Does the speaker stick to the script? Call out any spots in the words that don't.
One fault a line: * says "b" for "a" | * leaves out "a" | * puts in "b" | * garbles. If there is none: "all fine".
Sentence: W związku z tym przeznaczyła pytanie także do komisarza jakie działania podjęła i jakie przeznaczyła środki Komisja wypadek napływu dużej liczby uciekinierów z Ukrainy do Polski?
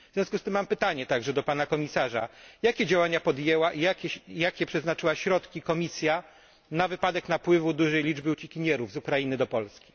* says "mam" for "przeznaczyła"
* puts in "pana"
* puts in "na"